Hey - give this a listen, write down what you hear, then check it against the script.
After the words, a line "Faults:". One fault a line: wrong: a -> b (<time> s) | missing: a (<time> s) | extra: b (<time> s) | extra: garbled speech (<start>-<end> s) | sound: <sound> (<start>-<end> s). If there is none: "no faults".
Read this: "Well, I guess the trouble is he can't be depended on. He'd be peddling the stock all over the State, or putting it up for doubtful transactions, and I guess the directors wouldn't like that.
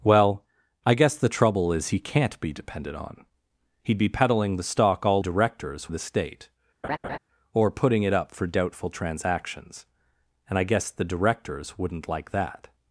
"Well, I guess the trouble is he can't be depended on. He'd be peddling the stock all directors the State, or putting it up for doubtful transactions, and I guess the directors wouldn't like that.
Faults:
wrong: over -> directors (5.2 s)
sound: laugh (6.8-7.2 s)